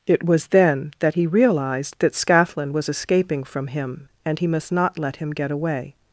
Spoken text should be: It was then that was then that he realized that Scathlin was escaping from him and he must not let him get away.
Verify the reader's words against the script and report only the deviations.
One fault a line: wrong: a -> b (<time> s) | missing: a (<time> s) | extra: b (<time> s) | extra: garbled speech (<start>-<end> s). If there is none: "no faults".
missing: was then that (1.1 s)